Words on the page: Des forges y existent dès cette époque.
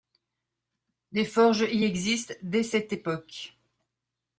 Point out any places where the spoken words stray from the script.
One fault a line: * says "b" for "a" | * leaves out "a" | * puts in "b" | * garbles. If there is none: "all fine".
all fine